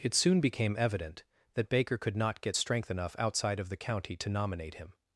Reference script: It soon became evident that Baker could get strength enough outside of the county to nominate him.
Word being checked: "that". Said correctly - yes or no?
yes